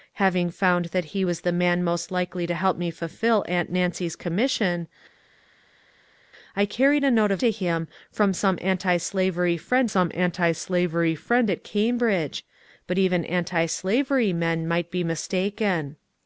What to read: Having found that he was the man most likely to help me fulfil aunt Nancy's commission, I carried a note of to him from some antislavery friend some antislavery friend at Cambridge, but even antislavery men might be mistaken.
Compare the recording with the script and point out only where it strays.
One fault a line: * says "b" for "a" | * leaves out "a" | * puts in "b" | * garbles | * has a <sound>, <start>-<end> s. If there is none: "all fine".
all fine